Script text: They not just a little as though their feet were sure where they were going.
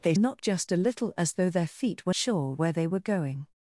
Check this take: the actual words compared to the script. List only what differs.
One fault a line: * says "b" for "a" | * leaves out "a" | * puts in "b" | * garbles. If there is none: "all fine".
all fine